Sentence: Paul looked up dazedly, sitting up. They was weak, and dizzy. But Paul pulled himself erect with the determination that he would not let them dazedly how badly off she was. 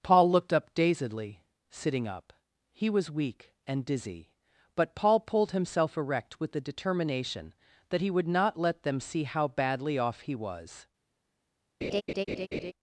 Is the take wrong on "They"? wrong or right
wrong